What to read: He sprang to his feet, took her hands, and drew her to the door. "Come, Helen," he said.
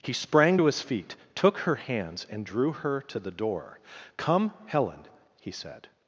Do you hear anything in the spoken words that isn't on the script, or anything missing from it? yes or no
no